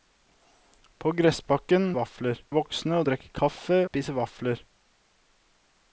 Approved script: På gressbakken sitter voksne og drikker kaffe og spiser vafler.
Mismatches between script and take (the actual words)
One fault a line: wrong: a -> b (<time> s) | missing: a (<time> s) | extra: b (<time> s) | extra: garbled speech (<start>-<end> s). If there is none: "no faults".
wrong: sitter -> vafler (2.0 s)
missing: og (3.8 s)